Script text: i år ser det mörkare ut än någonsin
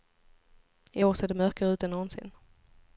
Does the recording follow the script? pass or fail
pass